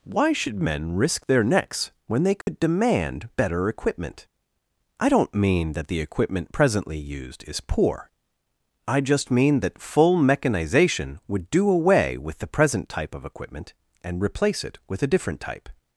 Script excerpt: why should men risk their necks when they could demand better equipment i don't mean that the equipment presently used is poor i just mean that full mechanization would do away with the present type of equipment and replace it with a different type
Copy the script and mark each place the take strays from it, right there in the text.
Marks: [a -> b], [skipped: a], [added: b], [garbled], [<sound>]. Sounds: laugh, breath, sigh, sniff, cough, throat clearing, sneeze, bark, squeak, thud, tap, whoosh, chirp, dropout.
why should men risk their necks when they could [dropout] demand better equipment i don't mean that the equipment presently used is poor i just mean that full mechanization would do away with the present type of equipment and replace it with a different type